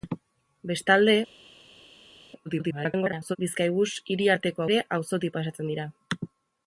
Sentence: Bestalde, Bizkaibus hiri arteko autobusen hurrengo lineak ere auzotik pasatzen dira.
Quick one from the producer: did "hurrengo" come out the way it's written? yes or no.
no